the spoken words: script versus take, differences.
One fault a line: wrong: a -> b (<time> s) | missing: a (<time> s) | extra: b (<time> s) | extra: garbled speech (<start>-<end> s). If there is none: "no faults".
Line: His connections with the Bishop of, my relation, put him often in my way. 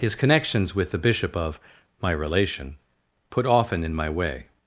missing: him (3.5 s)